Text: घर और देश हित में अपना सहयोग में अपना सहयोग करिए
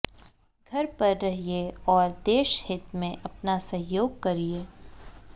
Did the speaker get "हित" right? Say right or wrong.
right